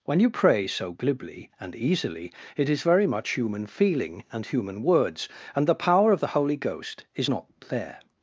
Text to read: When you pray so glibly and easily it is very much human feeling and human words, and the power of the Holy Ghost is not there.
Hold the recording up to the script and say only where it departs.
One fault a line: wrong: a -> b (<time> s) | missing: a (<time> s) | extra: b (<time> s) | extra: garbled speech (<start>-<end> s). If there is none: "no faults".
no faults